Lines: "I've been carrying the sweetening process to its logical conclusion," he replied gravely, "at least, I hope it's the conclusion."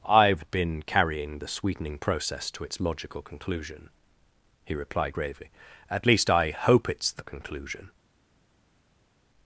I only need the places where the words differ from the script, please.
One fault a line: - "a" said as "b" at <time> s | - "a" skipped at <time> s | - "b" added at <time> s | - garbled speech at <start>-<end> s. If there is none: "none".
none